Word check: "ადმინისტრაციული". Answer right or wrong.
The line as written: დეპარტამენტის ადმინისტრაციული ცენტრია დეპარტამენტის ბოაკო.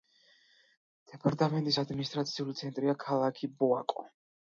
right